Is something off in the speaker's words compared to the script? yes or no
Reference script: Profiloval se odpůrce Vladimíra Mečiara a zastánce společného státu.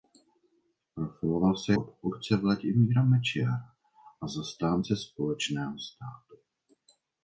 no